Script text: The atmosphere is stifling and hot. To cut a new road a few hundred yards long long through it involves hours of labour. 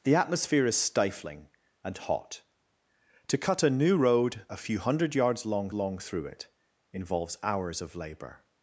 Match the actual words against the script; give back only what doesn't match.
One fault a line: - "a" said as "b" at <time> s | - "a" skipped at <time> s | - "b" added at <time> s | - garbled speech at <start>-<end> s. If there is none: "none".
none